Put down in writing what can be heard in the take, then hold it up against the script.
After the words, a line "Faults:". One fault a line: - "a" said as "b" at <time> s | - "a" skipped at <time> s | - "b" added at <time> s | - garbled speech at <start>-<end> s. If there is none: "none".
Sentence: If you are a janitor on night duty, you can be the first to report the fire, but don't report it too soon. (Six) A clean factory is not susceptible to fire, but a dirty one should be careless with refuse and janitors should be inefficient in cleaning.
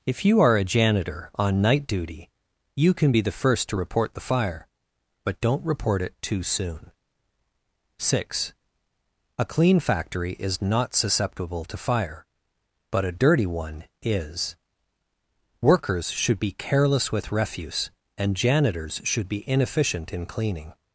If you are a janitor on night duty, you can be the first to report the fire, but don't report it too soon. (Six) A clean factory is not susceptible to fire, but a dirty one is. Workers should be careless with refuse and janitors should be inefficient in cleaning.
Faults:
- "is Workers" added at 14.0 s